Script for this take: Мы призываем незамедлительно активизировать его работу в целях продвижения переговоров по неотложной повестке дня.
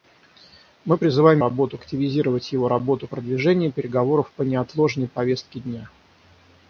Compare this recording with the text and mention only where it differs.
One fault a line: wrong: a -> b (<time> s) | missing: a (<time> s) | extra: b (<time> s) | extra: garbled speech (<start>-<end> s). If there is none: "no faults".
wrong: незамедлительно -> работу (1.4 s)
missing: в целях (3.1 s)